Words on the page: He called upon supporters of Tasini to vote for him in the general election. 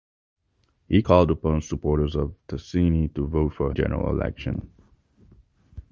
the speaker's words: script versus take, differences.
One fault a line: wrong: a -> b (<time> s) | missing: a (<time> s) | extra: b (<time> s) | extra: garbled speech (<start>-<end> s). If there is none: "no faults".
missing: him in the (3.7 s)